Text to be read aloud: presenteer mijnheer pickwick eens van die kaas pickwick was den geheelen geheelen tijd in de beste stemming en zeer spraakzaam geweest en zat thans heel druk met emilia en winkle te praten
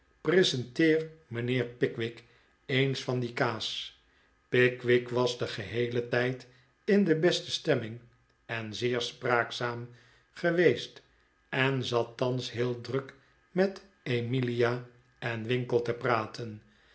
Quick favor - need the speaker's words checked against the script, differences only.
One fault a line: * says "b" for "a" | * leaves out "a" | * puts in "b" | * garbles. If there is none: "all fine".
* leaves out "geheelen"